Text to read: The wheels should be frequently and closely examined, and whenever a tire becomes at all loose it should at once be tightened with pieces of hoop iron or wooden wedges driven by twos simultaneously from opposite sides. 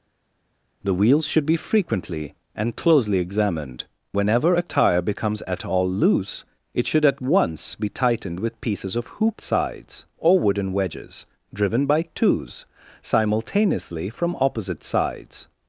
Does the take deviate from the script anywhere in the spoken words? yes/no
yes